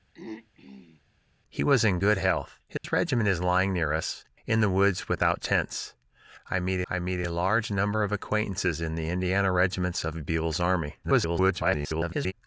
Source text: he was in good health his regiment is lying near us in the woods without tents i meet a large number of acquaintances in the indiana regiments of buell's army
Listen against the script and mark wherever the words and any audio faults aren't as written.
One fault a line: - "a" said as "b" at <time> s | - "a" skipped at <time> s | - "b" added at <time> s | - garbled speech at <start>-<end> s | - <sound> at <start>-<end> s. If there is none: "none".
- throat clearing at 0.1-1.0 s
- dropout at 2.8-2.8 s
- "i meet" added at 6.9 s
- garbled speech at 11.0-12.3 s